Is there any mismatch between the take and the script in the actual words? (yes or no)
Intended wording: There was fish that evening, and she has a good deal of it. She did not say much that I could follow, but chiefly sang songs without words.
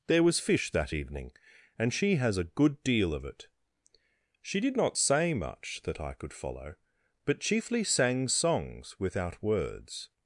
no